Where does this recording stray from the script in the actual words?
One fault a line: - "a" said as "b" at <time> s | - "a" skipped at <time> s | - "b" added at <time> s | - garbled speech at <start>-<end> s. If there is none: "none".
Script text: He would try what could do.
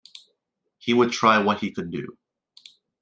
- "he" added at 1.6 s